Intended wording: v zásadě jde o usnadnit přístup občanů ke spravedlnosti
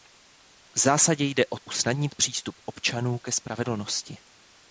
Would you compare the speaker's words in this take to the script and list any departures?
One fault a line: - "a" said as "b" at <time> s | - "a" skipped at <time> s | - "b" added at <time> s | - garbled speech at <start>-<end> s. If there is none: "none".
none